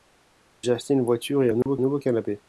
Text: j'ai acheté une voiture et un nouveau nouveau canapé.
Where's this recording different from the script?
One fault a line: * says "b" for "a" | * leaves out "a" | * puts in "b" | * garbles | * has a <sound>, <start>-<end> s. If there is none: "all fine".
* has a dropout, 1.6-1.7 s